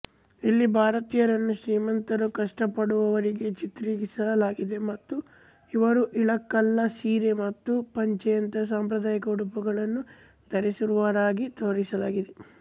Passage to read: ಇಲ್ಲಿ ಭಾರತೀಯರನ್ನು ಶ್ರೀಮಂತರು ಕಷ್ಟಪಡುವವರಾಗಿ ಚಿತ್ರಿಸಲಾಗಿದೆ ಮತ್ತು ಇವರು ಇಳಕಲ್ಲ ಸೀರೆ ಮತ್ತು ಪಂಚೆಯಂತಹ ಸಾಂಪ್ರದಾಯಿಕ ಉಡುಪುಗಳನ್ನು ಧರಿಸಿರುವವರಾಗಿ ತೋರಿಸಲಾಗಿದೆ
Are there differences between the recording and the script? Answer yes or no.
no